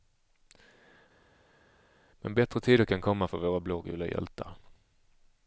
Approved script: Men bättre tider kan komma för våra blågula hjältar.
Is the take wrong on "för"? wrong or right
right